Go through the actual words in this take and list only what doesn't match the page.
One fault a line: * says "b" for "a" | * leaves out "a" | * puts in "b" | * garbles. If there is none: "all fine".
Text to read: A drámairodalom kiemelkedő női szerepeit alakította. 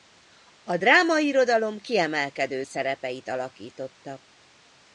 * leaves out "női"